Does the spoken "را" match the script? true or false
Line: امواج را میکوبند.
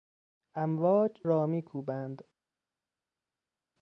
true